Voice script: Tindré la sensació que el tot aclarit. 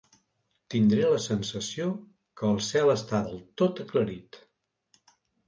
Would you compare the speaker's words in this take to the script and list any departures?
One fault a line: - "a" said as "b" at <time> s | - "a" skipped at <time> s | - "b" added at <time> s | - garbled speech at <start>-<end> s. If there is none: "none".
- "cel està del" added at 2.7 s